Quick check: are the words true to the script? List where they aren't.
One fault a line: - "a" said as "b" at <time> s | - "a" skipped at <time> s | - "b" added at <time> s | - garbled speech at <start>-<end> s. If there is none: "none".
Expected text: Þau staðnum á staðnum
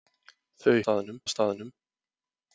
none